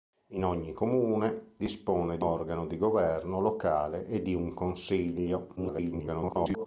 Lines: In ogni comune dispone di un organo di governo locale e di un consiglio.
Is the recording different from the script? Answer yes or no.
yes